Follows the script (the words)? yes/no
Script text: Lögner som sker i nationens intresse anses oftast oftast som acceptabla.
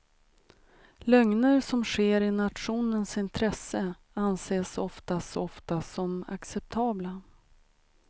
yes